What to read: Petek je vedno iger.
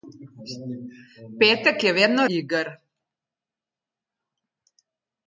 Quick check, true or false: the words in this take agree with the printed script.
true